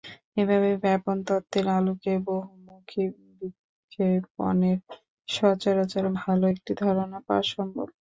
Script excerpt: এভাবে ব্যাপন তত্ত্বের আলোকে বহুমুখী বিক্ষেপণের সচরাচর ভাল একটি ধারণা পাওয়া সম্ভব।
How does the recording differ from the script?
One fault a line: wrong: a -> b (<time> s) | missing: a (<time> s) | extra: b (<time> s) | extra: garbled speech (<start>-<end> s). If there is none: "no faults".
no faults